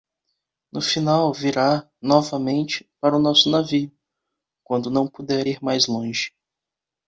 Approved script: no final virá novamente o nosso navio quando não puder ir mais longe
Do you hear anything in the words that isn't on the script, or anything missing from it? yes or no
yes